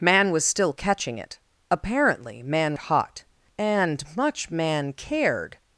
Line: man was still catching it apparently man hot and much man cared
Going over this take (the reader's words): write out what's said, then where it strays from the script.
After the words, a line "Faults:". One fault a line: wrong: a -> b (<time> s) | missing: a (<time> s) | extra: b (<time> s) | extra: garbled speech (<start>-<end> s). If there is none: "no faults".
man was still catching it apparently man hot and much man cared
Faults:
no faults